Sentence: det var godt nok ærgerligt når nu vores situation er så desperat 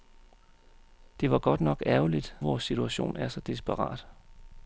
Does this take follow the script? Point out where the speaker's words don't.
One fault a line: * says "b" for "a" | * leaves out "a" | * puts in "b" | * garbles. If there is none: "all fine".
* leaves out "når nu"